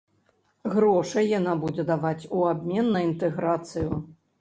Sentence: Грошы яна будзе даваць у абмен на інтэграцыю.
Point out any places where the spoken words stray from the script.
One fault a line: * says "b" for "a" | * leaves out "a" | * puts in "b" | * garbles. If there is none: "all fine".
all fine